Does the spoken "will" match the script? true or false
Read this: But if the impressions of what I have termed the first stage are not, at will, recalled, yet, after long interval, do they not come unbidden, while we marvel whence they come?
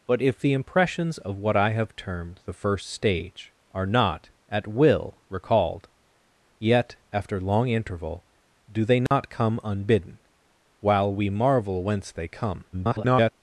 true